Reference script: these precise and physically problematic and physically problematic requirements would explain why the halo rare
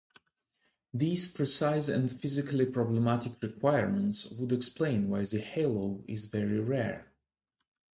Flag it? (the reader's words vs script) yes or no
yes